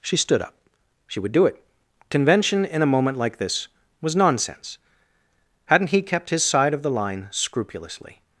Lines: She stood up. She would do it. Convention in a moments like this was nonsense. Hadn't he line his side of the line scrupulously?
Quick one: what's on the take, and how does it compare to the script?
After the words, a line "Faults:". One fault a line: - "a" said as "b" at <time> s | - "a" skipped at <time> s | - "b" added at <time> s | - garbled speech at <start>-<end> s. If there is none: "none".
She stood up. She would do it. Convention in a moment like this was nonsense. Hadn't he kept his side of the line scrupulously?
Faults:
- "moments" said as "moment" at 2.9 s
- "line" said as "kept" at 6.0 s